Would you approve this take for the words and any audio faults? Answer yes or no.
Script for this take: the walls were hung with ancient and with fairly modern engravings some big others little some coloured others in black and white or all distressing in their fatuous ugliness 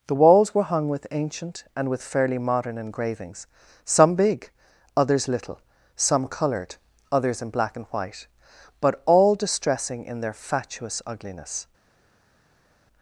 no